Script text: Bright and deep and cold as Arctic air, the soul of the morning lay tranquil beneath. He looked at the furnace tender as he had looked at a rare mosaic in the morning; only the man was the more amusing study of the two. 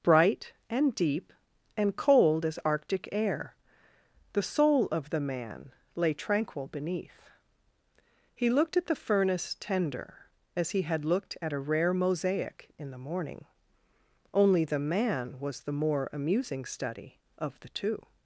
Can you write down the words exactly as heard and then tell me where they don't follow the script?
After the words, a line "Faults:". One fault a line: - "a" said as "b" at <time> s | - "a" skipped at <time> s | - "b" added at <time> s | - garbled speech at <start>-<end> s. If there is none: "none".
Bright and deep and cold as Arctic air, the soul of the man lay tranquil beneath. He looked at the furnace tender as he had looked at a rare mosaic in the morning; only the man was the more amusing study of the two.
Faults:
- "morning" said as "man" at 5.2 s